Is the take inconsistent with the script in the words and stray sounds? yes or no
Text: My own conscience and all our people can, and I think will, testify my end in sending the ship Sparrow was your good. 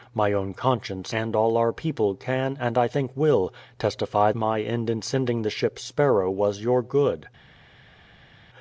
no